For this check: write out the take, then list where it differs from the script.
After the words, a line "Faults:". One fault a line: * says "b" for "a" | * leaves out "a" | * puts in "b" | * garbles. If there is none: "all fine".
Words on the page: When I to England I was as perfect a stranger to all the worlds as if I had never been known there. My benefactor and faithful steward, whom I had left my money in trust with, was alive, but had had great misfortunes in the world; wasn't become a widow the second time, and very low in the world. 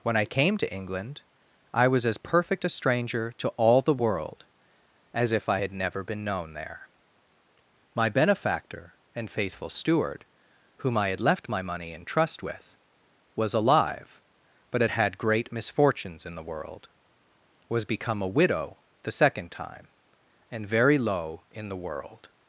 When I came to England I was as perfect a stranger to all the world as if I had never been known there. My benefactor and faithful steward, whom I had left my money in trust with, was alive, but had had great misfortunes in the world; was become a widow the second time, and very low in the world.
Faults:
* puts in "came"
* says "world" for "worlds"
* says "was" for "wasn't"